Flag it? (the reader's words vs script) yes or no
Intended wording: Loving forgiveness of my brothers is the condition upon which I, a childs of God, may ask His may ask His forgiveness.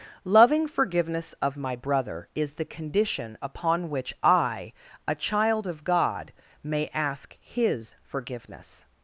yes